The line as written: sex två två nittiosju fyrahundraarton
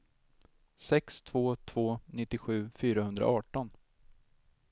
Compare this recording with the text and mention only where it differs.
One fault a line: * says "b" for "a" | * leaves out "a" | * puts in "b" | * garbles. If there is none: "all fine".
all fine